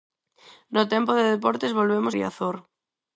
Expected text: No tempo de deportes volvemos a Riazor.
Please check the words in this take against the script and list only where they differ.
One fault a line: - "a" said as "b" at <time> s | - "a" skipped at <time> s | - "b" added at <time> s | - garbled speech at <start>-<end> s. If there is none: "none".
- "a" skipped at 2.1 s